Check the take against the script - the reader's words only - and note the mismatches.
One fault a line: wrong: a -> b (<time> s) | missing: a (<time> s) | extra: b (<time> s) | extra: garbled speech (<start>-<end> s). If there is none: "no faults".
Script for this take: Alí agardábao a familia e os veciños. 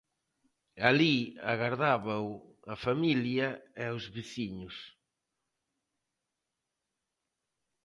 no faults